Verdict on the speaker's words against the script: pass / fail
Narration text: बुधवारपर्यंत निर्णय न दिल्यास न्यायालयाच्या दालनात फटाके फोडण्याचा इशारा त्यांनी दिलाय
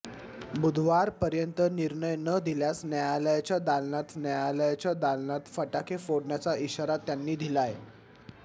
fail